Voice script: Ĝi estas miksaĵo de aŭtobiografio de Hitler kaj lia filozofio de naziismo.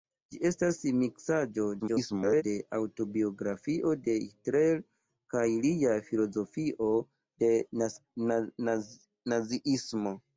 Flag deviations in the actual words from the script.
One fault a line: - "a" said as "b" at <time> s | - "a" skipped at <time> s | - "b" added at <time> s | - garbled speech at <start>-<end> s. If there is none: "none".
- garbled speech at 1.8-2.4 s